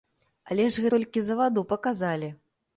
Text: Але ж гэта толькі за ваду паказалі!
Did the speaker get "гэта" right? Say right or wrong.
wrong